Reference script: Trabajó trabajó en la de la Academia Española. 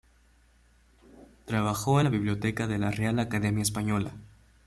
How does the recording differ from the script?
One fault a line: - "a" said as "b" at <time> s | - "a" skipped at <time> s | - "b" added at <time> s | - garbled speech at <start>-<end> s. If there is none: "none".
- "trabajó" skipped at 2.0 s
- "biblioteca" added at 2.1 s
- "Real" added at 2.9 s